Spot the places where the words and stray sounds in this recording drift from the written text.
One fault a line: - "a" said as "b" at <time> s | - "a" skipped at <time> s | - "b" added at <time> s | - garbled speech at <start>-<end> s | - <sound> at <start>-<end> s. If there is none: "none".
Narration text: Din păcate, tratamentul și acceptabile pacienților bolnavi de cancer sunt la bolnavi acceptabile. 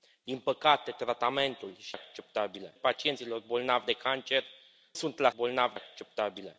none